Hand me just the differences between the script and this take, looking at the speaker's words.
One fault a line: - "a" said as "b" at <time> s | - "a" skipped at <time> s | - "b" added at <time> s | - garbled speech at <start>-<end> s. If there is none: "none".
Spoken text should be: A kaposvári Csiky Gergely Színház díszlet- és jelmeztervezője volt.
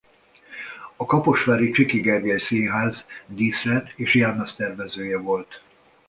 none